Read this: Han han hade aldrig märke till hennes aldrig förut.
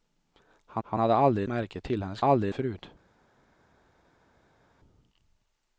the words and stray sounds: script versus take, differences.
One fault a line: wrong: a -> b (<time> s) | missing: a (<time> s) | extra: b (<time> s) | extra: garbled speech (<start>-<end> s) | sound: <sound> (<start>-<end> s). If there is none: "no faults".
no faults